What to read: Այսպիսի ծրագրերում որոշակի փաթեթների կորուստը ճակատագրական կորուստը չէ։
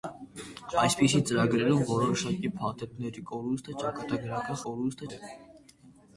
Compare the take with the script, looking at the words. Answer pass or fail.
pass